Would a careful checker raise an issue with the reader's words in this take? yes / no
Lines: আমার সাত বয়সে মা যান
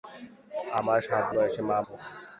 no